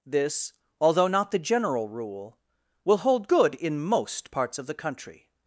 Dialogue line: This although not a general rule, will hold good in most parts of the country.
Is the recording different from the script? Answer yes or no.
yes